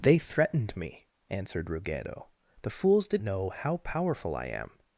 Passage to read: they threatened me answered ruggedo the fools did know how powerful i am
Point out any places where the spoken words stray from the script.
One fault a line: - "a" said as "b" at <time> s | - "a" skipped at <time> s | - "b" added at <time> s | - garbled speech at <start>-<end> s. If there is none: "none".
none